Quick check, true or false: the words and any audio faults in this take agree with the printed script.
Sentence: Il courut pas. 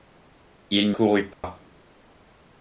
false